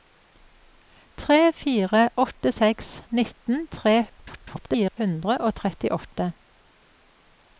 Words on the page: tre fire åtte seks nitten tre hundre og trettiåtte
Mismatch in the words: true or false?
true